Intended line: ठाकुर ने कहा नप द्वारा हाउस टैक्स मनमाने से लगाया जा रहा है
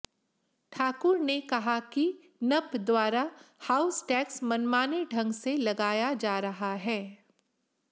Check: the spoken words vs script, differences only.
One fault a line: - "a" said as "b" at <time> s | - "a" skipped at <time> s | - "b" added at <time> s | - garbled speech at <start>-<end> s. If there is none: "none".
- "कि" added at 1.9 s
- "ढंग" added at 5.1 s